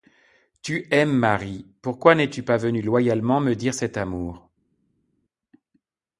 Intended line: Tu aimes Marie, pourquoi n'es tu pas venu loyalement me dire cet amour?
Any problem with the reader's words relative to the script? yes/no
no